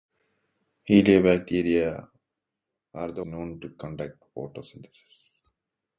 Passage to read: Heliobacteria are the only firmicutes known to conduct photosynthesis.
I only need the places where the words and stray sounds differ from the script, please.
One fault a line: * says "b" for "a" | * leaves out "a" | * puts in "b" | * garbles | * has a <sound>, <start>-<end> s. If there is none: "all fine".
* leaves out "only firmicutes"